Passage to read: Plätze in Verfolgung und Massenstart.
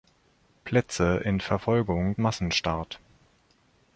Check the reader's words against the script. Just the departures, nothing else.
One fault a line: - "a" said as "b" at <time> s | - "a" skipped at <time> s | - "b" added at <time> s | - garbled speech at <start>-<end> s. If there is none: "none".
- "und" skipped at 2.2 s